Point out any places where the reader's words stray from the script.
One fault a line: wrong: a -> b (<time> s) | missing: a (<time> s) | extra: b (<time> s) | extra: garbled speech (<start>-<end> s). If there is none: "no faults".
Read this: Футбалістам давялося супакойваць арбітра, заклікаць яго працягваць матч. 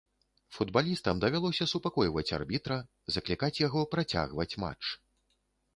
no faults